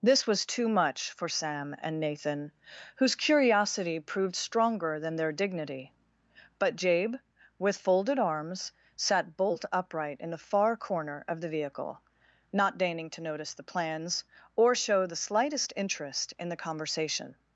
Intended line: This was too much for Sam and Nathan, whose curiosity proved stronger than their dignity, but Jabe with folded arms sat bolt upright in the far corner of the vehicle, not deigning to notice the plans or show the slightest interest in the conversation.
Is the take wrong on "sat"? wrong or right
right